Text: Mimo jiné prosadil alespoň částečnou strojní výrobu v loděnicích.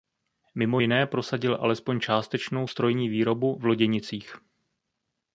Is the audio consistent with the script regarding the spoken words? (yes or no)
yes